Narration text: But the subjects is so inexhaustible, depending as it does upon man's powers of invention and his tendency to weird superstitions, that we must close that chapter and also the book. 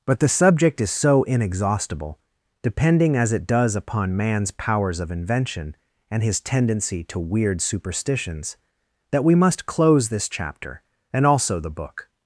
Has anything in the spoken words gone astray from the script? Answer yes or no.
yes